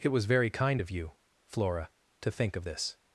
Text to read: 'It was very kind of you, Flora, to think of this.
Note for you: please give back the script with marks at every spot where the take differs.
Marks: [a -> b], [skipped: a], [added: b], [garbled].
'It was very kind of you, Flora, to think of this.